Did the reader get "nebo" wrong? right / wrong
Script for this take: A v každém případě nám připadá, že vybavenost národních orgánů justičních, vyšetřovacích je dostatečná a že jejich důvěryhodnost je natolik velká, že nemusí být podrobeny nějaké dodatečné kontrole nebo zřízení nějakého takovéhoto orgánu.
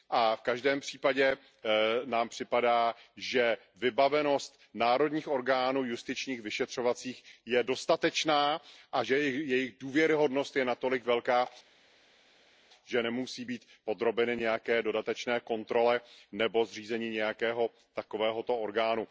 right